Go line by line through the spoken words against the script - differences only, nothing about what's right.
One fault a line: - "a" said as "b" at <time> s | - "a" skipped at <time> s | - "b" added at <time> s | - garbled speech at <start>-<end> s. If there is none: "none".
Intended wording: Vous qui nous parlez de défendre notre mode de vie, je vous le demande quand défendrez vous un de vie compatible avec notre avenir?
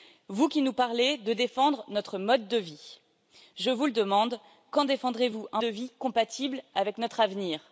none